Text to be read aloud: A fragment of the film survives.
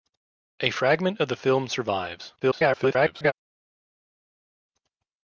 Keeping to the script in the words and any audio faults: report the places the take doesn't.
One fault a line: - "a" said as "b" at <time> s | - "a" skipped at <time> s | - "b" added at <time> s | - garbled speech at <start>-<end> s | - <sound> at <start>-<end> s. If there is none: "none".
- garbled speech at 2.4-3.3 s